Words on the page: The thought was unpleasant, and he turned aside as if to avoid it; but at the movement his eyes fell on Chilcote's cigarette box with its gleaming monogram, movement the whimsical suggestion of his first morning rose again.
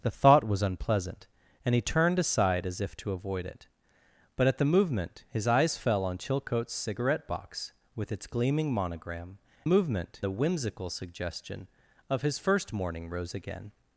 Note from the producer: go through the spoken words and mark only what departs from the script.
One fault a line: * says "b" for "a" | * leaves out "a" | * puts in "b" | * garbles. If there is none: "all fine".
all fine